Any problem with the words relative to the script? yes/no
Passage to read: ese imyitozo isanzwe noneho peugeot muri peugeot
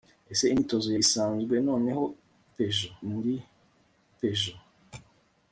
no